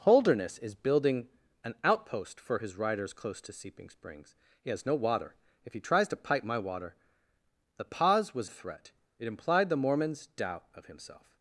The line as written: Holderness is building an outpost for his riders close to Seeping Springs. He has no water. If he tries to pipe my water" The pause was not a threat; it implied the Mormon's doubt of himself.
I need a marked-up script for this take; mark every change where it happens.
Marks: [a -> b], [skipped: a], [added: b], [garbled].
Holderness is building an outpost for his riders close to Seeping Springs. He has no water. If he tries to pipe my water" The pause was [skipped: not] a threat; it implied the Mormon's doubt of himself.